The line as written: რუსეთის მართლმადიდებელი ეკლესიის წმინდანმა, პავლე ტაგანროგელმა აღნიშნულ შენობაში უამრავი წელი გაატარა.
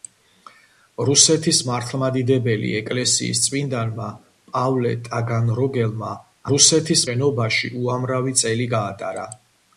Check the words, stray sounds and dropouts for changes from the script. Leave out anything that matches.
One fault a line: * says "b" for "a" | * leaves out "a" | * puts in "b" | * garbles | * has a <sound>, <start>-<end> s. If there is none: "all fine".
* says "რუსეთის" for "აღნიშნულ"